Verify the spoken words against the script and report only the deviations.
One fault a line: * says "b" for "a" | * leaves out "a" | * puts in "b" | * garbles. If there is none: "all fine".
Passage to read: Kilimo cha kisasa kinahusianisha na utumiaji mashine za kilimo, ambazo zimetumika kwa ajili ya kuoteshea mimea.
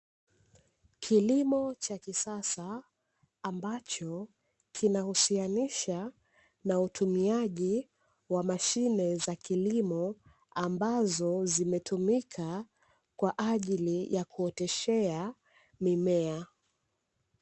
* puts in "ambacho"
* puts in "wa"